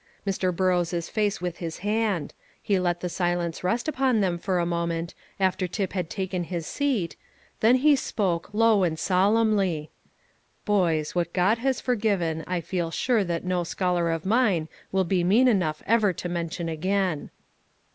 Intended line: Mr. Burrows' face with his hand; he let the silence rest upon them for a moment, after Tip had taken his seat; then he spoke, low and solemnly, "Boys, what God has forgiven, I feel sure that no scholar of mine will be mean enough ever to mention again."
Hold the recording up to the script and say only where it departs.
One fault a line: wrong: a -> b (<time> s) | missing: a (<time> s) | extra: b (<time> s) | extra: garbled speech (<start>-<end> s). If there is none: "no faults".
no faults